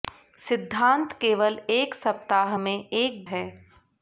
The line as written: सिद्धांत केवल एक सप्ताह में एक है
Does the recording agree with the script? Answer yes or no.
yes